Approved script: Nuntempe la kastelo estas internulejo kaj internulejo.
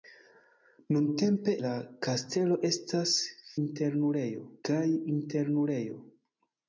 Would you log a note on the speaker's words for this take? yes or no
no